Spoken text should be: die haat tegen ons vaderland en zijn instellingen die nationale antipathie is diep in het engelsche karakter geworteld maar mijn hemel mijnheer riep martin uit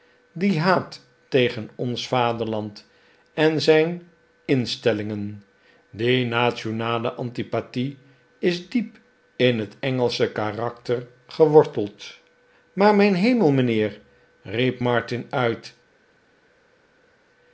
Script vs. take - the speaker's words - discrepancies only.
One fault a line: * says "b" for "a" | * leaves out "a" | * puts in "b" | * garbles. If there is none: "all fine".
all fine